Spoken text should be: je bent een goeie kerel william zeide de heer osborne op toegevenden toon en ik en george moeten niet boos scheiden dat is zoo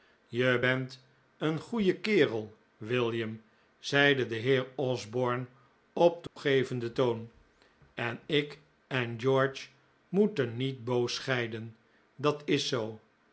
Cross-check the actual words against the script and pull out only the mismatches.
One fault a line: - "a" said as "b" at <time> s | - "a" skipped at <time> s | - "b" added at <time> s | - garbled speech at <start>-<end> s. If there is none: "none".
none